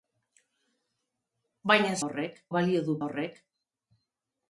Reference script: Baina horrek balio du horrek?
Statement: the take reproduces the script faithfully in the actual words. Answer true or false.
true